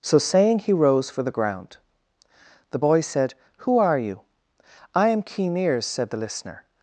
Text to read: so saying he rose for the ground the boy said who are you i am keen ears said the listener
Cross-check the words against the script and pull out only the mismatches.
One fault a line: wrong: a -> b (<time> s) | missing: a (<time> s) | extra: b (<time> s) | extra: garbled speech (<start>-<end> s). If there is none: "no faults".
no faults